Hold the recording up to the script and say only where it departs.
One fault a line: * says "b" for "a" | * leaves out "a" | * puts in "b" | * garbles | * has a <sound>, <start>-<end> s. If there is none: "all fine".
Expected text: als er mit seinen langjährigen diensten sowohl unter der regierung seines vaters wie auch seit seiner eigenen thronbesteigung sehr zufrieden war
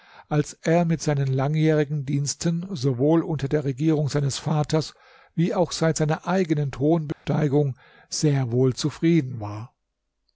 * has a dropout, 7.1-7.2 s
* puts in "wohl"